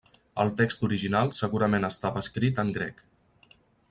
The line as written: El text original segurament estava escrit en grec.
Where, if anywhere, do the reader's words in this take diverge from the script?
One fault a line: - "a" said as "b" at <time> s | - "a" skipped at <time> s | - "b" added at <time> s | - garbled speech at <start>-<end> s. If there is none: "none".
none